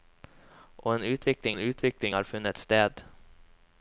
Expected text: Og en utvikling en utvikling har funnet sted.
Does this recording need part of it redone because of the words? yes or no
no